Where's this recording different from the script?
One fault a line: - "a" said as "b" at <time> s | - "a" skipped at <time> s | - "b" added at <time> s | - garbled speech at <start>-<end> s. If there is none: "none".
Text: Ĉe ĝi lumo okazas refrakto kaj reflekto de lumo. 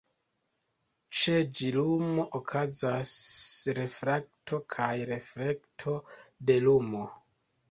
none